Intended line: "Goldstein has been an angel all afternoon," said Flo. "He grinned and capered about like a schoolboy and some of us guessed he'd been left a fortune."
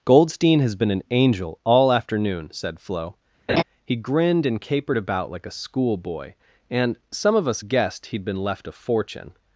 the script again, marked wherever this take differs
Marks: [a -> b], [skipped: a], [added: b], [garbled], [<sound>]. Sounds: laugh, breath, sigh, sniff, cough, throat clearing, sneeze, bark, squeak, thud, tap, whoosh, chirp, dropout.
"Goldstein has been an angel all afternoon," said Flo. [laugh] "He grinned and capered about like a schoolboy and some of us guessed he'd been left a fortune."